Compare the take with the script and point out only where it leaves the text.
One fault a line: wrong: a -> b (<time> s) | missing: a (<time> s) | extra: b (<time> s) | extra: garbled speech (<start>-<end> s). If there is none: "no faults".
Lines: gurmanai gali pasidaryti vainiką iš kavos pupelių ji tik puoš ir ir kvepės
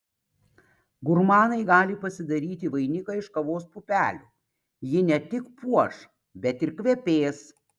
extra: ne (5.1 s)
wrong: ir -> bet (6.5 s)